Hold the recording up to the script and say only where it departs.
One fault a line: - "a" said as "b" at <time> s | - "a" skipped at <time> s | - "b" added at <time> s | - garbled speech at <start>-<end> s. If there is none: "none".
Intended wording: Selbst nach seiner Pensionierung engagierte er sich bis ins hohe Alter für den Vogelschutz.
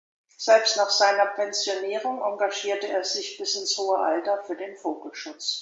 none